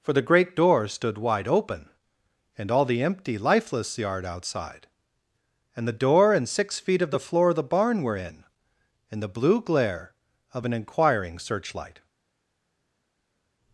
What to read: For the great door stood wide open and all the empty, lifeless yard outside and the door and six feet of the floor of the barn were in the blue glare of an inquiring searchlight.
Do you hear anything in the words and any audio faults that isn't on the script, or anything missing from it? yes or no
yes